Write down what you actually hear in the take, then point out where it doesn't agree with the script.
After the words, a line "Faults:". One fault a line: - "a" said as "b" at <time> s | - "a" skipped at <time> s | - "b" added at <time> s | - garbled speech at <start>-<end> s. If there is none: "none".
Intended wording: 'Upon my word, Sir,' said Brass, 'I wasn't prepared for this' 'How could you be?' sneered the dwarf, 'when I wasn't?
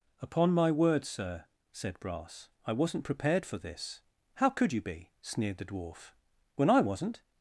'Upon my word, Sir,' said Brass, 'I wasn't prepared for this' 'How could you be?' sneered the dwarf, 'when I wasn't?
Faults:
none